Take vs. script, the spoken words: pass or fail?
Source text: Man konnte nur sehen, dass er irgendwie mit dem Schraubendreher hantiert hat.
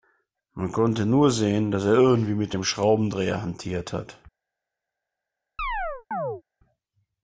pass